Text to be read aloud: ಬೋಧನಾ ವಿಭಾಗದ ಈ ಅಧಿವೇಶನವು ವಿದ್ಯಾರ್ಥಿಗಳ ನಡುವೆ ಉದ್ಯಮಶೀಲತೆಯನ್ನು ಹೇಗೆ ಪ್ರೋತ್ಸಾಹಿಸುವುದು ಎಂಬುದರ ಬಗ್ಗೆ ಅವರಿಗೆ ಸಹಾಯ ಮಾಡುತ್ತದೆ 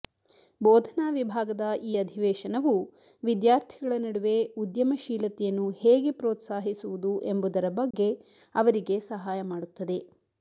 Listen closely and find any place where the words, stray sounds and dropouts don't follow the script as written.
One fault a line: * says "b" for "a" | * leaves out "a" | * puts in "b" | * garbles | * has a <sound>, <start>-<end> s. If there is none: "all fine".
* has a dropout, 7.9-7.9 s